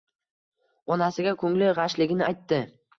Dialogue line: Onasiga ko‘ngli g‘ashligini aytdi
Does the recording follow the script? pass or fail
pass